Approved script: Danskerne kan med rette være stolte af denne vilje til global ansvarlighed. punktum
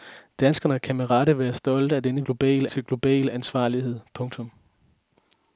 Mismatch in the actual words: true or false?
true